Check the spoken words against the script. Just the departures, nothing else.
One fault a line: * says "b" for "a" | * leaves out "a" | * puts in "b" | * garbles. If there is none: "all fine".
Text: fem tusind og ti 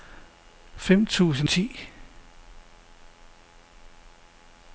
* leaves out "og"